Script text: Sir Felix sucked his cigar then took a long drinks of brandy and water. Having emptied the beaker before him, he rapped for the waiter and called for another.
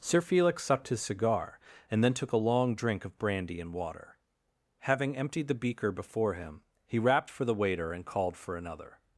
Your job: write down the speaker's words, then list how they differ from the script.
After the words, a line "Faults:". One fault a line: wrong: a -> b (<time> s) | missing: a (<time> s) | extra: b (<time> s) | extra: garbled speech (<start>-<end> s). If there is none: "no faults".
Sir Felix sucked his cigar and then took a long drink of brandy and water. Having emptied the beaker before him, he rapped for the waiter and called for another.
Faults:
extra: and (1.9 s)
wrong: drinks -> drink (2.7 s)